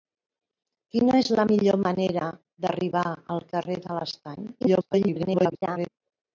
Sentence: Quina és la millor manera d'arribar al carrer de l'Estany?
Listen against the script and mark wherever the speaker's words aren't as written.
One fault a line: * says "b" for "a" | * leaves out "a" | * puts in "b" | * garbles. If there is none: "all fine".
* garbles